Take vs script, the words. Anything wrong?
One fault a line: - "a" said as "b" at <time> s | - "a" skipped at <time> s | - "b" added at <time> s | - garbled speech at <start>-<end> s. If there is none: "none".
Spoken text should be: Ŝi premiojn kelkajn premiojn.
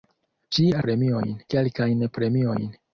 none